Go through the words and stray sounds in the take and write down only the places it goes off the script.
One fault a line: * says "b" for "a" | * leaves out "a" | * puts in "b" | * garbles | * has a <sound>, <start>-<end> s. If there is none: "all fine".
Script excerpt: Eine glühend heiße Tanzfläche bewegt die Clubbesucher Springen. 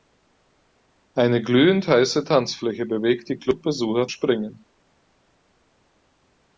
all fine